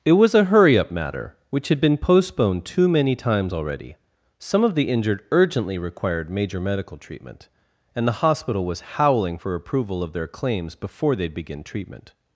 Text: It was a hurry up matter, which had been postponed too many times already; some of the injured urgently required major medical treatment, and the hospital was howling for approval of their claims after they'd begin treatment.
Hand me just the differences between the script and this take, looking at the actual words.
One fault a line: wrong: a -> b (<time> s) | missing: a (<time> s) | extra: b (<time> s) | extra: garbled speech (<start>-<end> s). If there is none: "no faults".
wrong: after -> before (10.7 s)